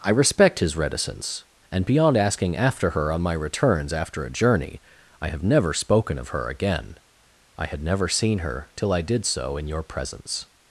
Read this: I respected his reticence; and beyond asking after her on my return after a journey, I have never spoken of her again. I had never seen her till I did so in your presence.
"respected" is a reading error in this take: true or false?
true